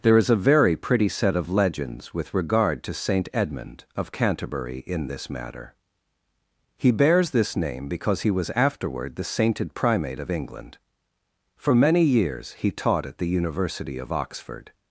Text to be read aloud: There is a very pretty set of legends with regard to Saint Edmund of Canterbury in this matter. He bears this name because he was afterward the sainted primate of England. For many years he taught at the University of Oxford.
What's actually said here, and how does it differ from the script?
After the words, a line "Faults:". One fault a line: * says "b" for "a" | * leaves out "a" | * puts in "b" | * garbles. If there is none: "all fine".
There is a very pretty set of legends with regard to Saint Edmund of Canterbury in this matter. He bears this name because he was afterward the sainted primate of England. For many years he taught at the University of Oxford.
Faults:
all fine